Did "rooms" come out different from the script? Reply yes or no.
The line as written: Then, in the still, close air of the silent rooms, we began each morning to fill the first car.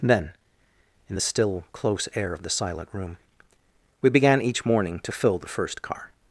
yes